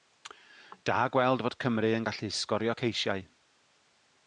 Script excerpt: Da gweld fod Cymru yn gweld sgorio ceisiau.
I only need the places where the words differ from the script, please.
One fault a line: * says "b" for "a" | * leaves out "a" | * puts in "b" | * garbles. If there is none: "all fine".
* says "gallu" for "gweld"